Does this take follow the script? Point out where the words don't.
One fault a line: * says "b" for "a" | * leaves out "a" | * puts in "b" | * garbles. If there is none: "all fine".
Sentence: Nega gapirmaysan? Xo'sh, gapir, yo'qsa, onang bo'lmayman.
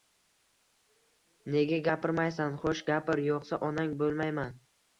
all fine